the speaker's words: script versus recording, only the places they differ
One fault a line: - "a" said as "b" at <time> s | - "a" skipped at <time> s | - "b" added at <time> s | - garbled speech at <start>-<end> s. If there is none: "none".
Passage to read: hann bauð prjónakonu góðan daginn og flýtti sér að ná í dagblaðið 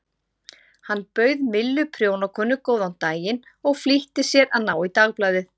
- "millu" added at 1.6 s